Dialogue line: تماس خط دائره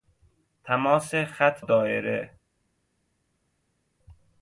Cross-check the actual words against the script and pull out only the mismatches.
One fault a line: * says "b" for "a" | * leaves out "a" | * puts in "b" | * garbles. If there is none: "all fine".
all fine